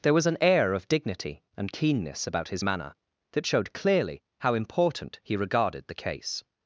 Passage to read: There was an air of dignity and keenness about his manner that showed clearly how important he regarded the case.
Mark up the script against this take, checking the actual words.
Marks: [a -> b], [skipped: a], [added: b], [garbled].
There was an air of dignity and keenness about his manner that showed clearly how important he regarded the case.